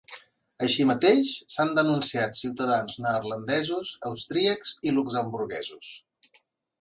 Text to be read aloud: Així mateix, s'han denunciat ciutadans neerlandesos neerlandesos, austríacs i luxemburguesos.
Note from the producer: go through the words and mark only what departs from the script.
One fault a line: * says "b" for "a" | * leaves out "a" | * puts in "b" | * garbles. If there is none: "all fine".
* leaves out "neerlandesos"